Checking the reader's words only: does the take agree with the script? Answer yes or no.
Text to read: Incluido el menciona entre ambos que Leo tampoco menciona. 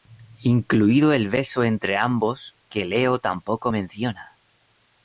no